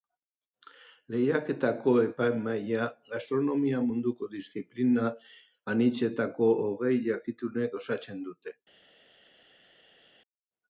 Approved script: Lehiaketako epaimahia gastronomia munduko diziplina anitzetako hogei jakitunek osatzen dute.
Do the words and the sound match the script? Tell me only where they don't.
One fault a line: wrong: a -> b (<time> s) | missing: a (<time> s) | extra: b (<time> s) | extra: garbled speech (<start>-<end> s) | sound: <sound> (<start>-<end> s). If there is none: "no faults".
no faults